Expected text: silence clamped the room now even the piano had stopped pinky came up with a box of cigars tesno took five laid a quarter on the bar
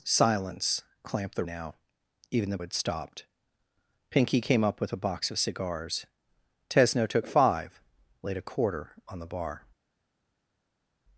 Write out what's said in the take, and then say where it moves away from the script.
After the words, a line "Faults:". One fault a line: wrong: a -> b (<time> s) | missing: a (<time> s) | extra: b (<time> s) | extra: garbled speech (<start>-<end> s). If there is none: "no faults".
silence clamped the now even the had stopped pinky came up with a box of cigars tesno took five laid a quarter on the bar
Faults:
missing: room (1.4 s)
missing: piano (2.6 s)